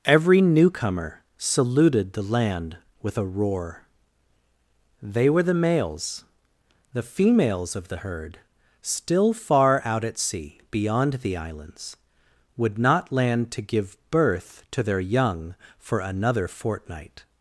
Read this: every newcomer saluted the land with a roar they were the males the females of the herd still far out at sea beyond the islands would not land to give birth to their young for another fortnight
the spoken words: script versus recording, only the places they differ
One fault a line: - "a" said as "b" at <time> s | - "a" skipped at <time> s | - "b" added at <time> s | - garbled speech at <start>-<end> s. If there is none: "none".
none